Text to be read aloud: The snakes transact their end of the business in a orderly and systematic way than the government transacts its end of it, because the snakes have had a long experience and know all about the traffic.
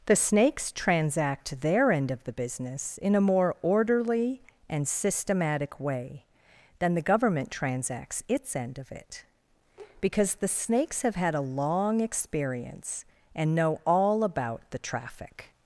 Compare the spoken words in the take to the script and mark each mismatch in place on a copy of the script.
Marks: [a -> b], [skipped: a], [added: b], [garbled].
The snakes transact their end of the business in a [added: more] orderly and systematic way than the government transacts its end of it, because the snakes have had a long experience and know all about the traffic.